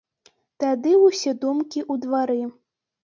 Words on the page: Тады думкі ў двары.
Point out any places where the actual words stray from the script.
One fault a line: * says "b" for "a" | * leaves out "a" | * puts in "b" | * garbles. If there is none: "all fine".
* puts in "ўсе"